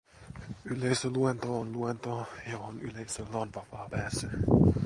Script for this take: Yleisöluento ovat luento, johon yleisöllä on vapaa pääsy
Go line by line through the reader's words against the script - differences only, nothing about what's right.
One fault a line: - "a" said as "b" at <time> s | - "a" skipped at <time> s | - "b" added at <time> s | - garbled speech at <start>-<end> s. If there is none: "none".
- "ovat" said as "on" at 1.6 s